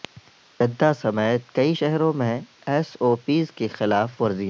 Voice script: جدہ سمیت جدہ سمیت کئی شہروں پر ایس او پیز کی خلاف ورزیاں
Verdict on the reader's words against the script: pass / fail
fail